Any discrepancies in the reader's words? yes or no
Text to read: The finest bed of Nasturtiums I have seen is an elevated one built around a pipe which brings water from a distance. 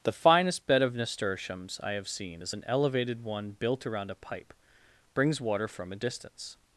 yes